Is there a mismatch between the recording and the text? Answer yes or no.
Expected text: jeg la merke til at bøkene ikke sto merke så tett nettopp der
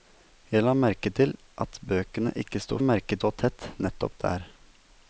no